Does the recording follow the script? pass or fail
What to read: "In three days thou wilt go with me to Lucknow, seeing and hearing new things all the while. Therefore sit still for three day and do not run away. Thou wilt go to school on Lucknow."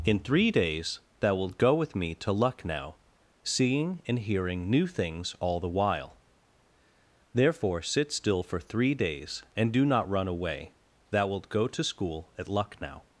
fail